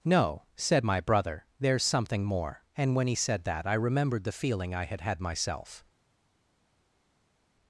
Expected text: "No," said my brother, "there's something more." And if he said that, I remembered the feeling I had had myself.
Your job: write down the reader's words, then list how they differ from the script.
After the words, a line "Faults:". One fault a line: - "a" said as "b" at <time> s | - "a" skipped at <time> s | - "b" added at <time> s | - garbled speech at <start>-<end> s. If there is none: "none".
"No," said my brother, "there's something more." And when he said that, I remembered the feeling I had had myself.
Faults:
- "if" said as "when" at 3.0 s